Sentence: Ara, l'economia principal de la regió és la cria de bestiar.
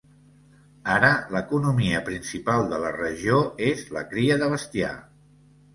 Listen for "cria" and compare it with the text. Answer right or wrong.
right